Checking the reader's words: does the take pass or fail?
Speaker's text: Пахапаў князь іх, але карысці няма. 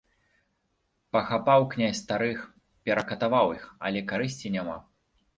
fail